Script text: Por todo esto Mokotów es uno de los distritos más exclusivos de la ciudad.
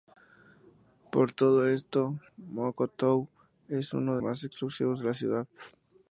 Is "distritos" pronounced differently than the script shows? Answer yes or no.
yes